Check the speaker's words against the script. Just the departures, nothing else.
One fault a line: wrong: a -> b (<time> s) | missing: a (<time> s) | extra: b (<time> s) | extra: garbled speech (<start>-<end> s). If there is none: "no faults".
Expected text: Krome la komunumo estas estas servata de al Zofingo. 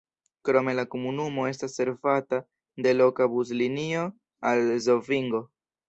missing: estas (1.8 s)
extra: loka buslinio (3.0 s)